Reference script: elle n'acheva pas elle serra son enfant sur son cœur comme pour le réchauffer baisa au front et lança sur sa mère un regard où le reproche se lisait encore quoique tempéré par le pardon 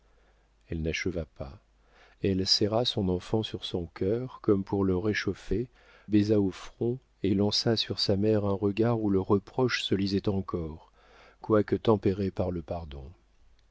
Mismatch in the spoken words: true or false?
false